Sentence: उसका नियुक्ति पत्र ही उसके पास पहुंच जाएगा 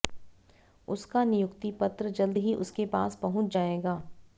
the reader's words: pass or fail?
fail